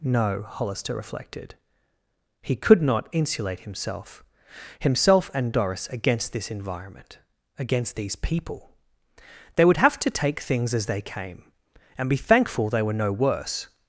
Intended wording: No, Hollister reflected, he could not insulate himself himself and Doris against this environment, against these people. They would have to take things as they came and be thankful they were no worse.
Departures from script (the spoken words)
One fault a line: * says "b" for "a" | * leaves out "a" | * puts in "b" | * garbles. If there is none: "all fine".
all fine